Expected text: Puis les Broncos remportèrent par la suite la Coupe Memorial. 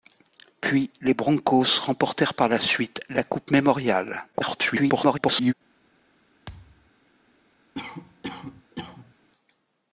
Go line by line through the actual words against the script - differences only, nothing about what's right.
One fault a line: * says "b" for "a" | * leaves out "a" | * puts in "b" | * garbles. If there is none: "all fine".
* garbles